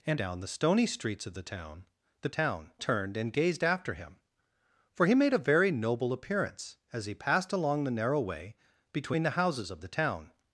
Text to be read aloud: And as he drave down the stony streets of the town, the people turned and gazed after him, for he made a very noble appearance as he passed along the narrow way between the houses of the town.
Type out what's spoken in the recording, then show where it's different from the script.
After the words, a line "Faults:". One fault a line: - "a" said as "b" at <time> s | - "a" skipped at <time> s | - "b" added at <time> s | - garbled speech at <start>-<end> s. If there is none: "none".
And down the stony streets of the town, the town turned and gazed after him, for he made a very noble appearance as he passed along the narrow way between the houses of the town.
Faults:
- "as he drave" skipped at 0.2 s
- "people" said as "town" at 2.3 s